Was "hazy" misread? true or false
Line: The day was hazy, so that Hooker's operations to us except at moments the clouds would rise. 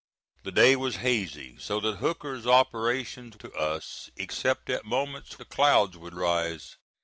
false